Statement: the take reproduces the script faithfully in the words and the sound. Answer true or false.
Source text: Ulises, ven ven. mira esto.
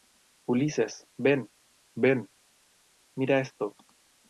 true